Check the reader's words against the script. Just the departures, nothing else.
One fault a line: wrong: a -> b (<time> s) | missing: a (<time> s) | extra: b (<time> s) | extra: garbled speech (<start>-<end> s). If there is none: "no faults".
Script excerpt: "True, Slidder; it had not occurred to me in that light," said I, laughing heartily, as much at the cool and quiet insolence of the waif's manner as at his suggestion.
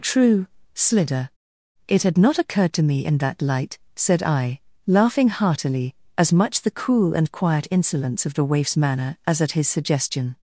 missing: at (6.6 s)